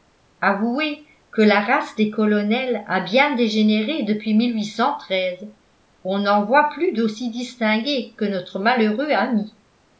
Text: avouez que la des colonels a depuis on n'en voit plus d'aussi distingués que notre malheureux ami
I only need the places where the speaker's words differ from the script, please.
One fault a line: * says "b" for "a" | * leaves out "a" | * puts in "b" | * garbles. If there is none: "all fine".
* puts in "race"
* puts in "bien dégénéré"